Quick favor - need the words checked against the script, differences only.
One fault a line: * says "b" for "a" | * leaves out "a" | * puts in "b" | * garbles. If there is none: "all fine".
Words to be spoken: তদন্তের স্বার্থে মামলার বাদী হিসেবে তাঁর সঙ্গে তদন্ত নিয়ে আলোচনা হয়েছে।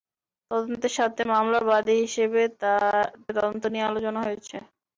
* leaves out "তাঁর সঙ্গে"